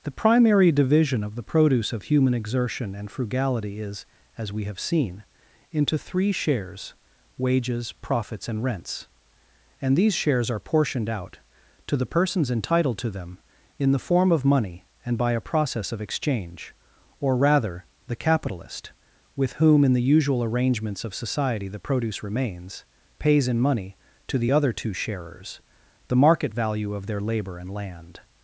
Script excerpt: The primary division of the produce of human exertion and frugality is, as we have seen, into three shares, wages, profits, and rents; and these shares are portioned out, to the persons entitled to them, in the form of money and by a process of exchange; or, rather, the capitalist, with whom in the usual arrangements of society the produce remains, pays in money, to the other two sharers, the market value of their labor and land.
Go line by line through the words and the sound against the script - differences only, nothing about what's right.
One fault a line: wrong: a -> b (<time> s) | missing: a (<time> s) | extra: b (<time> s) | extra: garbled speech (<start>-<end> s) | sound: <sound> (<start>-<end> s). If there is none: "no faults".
no faults